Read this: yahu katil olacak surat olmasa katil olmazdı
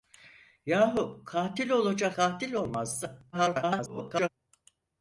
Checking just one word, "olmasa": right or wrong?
wrong